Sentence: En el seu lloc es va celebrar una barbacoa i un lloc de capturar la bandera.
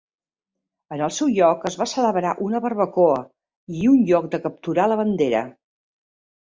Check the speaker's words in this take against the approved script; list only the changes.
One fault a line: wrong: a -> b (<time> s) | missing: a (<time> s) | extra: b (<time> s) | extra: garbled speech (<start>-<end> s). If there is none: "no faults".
no faults